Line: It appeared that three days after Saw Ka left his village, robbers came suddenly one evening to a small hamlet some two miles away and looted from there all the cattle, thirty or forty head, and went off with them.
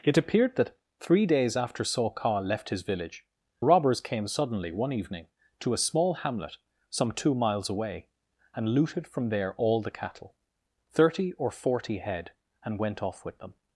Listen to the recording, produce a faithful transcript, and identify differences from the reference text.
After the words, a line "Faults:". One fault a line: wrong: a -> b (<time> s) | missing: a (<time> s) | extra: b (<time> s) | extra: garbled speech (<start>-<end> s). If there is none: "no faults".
It appeared that three days after Saw Ka left his village, robbers came suddenly one evening to a small hamlet some two miles away and looted from there all the cattle, thirty or forty head, and went off with them.
Faults:
no faults